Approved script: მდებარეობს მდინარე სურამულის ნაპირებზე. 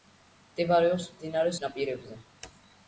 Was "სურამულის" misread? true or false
true